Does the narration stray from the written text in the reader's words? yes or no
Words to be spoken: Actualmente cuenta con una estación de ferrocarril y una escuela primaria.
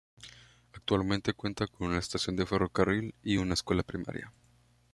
no